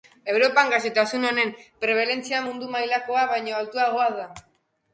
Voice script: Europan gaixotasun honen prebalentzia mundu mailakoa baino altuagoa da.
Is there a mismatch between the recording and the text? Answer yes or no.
no